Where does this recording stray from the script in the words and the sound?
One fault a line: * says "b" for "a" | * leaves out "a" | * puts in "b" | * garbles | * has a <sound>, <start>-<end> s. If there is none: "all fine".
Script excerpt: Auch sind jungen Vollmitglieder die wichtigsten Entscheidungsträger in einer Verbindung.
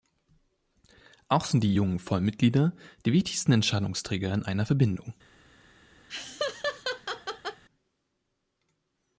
* puts in "die"
* has a laugh, 6.1-7.6 s